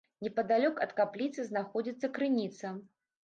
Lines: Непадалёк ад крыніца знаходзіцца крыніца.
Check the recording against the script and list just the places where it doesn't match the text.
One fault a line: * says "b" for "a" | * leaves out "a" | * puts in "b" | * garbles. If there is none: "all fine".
* says "капліцы" for "крыніца"